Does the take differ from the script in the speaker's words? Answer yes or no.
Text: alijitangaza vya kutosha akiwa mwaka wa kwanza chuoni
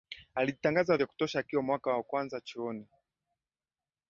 no